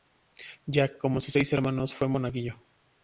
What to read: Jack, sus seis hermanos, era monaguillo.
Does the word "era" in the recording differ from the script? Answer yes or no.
yes